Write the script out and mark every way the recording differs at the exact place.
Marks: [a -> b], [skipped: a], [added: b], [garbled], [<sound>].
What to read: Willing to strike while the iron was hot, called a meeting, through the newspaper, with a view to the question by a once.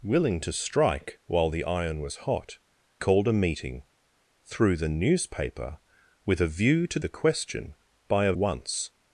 Willing to strike while the iron was hot, called a meeting, through the newspaper, with a view to the question by a once.